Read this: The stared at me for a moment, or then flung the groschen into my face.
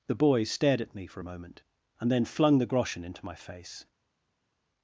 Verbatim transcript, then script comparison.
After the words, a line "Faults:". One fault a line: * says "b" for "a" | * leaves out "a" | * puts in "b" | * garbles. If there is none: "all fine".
The boy stared at me for a moment, and then flung the groschen into my face.
Faults:
* puts in "boy"
* says "and" for "or"